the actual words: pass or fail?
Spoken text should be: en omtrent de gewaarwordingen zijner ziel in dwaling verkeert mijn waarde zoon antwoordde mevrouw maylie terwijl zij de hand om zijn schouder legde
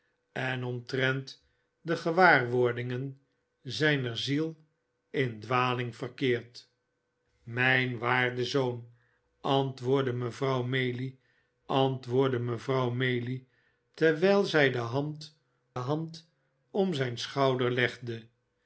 fail